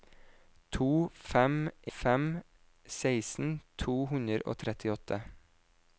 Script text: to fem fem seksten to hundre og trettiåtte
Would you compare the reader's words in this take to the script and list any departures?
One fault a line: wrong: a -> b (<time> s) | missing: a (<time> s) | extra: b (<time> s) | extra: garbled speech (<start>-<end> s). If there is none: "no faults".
no faults